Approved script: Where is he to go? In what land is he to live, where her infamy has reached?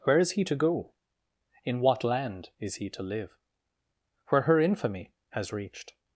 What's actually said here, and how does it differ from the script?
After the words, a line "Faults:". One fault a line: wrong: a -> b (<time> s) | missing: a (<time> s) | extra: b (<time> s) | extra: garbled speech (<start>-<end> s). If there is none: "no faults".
Where is he to go? In what land is he to live, where her infamy has reached?
Faults:
no faults